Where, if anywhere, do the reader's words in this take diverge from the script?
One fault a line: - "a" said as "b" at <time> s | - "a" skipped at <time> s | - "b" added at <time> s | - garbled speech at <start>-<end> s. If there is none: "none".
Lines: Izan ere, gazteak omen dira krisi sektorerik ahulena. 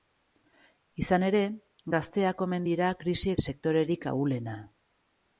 none